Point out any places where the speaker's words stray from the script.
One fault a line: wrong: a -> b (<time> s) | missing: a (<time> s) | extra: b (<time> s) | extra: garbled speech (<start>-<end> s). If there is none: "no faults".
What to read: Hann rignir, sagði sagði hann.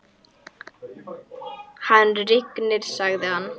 missing: sagði (3.3 s)